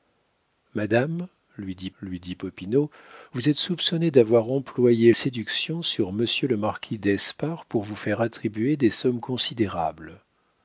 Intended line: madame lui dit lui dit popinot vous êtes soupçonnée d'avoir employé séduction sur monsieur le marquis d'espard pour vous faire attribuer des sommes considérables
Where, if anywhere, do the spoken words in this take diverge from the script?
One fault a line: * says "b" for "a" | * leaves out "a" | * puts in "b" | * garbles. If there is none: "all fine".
all fine